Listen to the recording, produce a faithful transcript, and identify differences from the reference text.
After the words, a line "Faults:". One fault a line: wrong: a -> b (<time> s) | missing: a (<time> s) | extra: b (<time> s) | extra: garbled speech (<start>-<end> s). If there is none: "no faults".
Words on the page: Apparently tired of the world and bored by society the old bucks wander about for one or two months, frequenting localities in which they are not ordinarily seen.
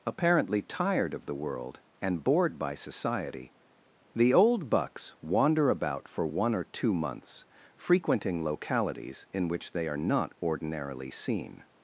Apparently tired of the world and bored by society the old bucks wander about for one or two months, frequenting localities in which they are not ordinarily seen.
Faults:
no faults